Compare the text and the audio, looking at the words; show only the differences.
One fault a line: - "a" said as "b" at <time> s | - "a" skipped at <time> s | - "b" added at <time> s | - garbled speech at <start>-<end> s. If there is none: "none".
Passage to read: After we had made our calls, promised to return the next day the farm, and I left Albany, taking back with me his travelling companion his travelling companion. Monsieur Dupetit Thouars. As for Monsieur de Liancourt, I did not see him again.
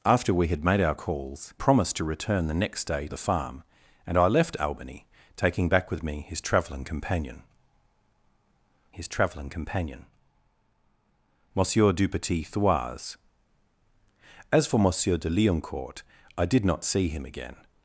none